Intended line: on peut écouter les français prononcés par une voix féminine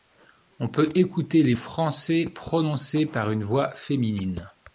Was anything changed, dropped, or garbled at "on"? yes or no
no